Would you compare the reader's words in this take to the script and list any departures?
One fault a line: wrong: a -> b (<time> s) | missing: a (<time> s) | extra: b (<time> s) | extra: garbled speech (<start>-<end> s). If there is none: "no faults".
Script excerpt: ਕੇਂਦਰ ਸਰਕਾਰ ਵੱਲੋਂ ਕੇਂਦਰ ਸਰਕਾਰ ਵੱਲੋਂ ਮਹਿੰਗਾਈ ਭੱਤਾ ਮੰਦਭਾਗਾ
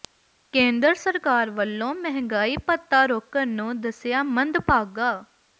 wrong: ਕੇਂਦਰ ਸਰਕਾਰ ਵੱਲੋਂ ਮਹਿੰਗਾਈ ਭੱਤਾ -> ਮਹਿੰਗਾਈ ਭੱਤਾ ਰੋਕਣ ਨੂੰ ਦੱਸਿਆ (1.9 s)